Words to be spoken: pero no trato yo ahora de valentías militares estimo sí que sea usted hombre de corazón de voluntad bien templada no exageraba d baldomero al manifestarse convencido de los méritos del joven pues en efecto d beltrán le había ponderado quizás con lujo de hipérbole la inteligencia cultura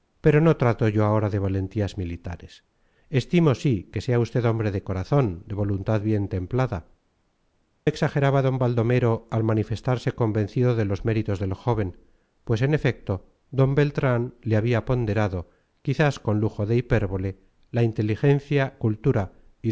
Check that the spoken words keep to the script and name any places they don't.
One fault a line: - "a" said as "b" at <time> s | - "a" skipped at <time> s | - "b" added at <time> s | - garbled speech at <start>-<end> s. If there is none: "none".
- "no" skipped at 6.9 s